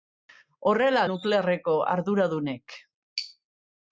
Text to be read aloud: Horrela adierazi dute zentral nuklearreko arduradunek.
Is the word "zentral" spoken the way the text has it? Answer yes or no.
no